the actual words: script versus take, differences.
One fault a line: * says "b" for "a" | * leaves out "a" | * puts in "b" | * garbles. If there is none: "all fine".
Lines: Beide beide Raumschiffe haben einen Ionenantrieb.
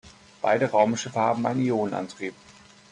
* leaves out "beide"